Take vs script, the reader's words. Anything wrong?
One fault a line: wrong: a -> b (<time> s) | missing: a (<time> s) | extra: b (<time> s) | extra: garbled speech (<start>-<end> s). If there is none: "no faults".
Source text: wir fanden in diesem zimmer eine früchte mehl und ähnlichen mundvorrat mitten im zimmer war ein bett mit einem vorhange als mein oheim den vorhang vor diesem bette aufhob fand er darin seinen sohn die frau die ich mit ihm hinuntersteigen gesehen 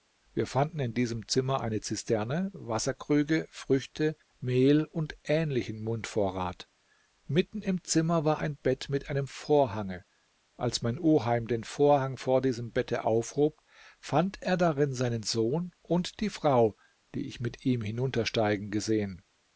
extra: zisterne wasserkrüge (1.8 s)
extra: und (15.8 s)